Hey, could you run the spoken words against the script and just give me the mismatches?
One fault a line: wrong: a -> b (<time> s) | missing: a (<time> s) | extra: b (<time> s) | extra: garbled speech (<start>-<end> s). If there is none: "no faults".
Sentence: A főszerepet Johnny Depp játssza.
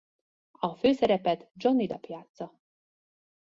no faults